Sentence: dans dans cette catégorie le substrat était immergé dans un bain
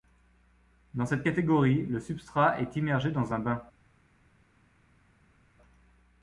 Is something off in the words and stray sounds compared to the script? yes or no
yes